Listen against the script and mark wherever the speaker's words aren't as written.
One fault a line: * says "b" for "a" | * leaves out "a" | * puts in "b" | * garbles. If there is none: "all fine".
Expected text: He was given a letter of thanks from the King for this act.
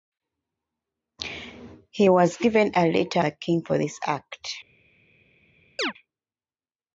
* leaves out "of thanks from"